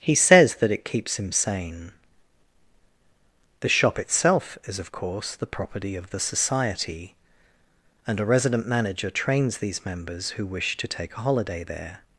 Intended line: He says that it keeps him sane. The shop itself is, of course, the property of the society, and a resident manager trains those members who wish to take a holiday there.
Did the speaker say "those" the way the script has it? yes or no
no